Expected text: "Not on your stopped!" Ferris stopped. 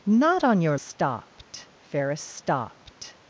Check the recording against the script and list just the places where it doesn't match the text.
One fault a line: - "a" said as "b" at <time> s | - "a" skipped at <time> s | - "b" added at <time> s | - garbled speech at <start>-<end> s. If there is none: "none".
none